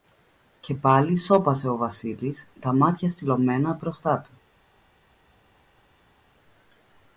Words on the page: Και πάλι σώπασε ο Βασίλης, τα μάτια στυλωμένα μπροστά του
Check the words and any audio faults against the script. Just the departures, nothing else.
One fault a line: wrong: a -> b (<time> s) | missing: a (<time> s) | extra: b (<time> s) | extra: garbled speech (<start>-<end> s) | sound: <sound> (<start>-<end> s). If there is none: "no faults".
no faults